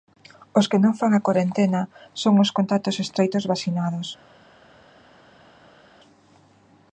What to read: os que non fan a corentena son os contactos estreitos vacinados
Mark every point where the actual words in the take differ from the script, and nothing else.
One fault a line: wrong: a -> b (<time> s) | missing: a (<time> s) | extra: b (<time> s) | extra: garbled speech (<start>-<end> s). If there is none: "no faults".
no faults